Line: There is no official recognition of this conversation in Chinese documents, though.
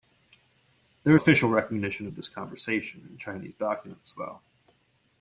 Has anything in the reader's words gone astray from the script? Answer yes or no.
yes